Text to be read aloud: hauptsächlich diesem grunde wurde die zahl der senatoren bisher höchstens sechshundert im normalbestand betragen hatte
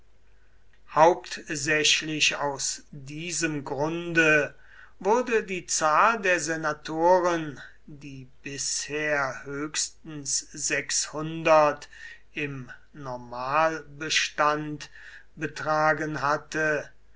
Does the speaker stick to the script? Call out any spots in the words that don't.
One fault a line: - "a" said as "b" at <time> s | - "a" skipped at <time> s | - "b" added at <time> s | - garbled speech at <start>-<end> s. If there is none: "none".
- "aus" added at 2.4 s
- "die" added at 7.8 s